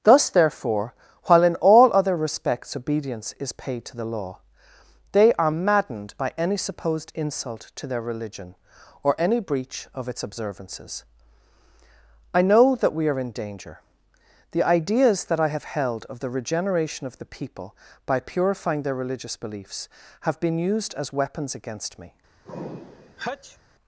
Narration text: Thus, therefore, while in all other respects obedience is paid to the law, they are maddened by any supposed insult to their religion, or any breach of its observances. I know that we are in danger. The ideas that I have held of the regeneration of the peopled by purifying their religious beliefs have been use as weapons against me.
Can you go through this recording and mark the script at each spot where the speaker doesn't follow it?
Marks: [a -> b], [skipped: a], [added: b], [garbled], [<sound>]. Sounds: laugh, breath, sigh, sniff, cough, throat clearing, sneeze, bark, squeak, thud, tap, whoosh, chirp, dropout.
Thus, therefore, while in all other respects obedience is paid to the law, they are maddened by any supposed insult to their religion, or any breach of its observances. I know that we are in danger. The ideas that I have held of the regeneration of the [peopled -> people] by purifying their religious beliefs have been [use -> used] as weapons against me. [sneeze]